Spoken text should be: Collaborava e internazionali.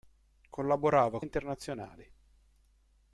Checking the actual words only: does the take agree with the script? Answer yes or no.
yes